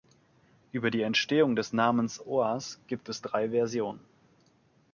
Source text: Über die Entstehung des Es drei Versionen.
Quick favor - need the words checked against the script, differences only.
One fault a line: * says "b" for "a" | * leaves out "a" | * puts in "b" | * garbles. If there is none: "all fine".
* puts in "Namens Oas gibt"